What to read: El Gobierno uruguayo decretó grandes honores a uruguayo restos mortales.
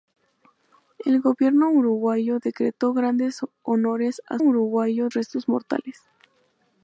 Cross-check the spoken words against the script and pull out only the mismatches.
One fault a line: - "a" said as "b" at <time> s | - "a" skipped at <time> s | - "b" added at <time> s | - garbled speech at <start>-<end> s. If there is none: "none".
none